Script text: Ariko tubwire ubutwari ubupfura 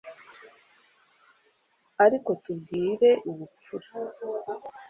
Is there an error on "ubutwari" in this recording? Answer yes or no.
yes